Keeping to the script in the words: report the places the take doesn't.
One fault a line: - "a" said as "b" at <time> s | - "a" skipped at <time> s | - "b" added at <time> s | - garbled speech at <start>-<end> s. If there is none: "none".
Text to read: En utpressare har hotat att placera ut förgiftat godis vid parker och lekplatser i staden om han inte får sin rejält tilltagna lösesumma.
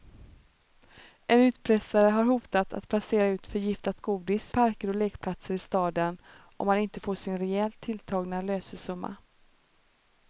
- "vid" skipped at 4.5 s